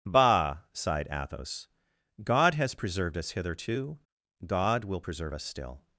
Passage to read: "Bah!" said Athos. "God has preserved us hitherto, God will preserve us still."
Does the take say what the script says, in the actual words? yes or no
no